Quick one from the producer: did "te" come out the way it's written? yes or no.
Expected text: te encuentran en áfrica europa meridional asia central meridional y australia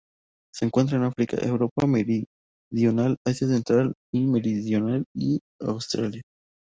no